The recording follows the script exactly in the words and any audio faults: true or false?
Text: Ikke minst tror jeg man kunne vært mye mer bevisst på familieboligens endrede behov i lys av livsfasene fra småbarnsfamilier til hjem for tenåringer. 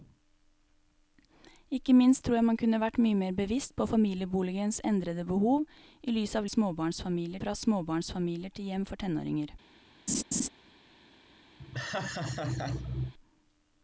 false